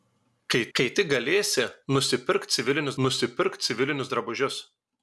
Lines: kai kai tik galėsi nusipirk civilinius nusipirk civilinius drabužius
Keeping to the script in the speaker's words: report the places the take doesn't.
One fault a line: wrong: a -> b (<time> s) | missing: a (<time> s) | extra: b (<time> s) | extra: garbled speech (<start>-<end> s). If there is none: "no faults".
no faults